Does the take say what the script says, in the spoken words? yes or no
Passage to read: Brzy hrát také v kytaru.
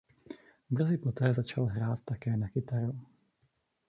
no